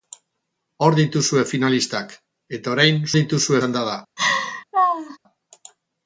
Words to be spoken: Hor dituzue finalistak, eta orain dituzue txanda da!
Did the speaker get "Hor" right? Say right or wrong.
right